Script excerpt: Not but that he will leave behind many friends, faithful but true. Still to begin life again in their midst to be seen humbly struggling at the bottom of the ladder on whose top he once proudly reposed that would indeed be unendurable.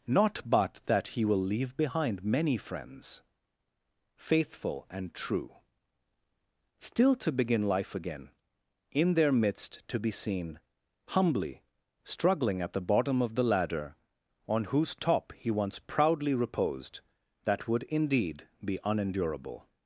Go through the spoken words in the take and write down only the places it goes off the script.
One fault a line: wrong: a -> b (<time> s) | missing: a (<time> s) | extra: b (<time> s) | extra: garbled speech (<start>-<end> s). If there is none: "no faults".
wrong: but -> and (4.9 s)